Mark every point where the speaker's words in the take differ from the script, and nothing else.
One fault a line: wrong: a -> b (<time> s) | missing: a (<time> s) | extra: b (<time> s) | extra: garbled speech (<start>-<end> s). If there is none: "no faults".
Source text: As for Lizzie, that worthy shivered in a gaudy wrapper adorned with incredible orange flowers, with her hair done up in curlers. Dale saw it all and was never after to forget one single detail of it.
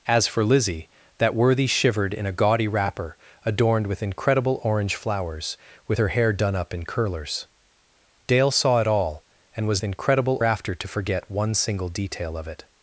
wrong: never -> incredible (9.8 s)